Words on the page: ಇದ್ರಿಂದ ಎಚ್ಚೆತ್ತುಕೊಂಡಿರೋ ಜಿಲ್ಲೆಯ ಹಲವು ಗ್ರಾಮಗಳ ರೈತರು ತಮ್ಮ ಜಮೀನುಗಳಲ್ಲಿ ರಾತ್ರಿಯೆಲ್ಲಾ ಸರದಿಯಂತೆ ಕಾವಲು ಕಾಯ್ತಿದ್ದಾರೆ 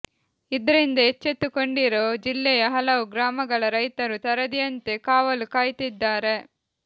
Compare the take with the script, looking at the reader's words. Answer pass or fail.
fail